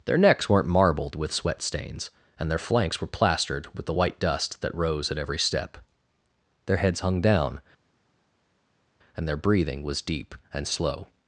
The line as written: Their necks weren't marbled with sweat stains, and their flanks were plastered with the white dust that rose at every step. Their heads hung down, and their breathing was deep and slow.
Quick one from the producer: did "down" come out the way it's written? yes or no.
yes